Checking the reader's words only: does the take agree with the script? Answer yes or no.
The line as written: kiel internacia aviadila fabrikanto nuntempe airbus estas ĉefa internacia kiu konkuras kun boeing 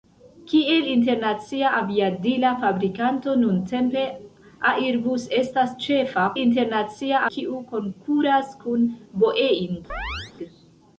yes